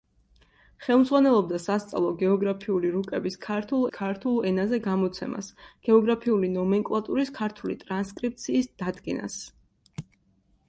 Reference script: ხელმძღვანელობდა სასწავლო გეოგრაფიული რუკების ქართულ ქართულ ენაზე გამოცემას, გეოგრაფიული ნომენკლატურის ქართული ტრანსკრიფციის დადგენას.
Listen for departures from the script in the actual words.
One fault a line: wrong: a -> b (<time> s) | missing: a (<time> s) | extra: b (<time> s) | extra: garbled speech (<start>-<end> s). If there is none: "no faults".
no faults